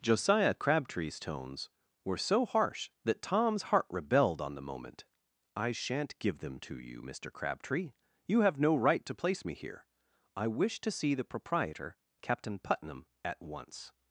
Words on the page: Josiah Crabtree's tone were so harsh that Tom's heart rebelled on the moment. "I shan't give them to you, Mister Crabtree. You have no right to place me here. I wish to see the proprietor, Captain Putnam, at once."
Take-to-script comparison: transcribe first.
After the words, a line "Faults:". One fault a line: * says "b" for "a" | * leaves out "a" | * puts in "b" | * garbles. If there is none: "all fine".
Josiah Crabtree's tones were so harsh that Tom's heart rebelled on the moment. "I shan't give them to you, Mister Crabtree. You have no right to place me here. I wish to see the proprietor, Captain Putnam, at once."
Faults:
* says "tones" for "tone"